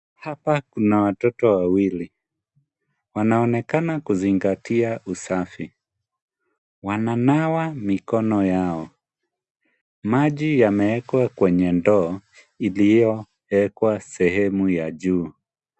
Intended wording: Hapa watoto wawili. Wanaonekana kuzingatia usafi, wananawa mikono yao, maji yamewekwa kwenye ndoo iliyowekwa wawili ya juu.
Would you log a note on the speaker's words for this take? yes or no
yes